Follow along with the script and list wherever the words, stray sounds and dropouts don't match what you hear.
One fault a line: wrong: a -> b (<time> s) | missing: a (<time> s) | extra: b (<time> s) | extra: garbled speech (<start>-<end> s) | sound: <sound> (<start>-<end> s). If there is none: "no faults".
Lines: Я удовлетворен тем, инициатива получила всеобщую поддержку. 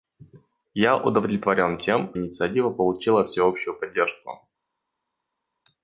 no faults